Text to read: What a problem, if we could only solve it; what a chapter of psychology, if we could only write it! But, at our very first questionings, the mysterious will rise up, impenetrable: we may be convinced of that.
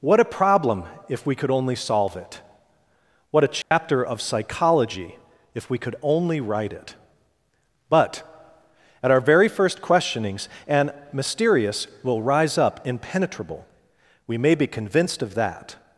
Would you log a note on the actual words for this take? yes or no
yes